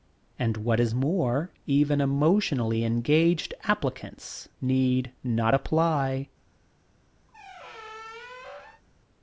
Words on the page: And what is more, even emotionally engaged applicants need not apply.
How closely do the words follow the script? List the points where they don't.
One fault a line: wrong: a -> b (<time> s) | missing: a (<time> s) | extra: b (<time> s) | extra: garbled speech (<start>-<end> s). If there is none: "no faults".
no faults